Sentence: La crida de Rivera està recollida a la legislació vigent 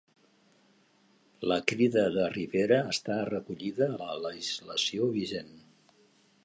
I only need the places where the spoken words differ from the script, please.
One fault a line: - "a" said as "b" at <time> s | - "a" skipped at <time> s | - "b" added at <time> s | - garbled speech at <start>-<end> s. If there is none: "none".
none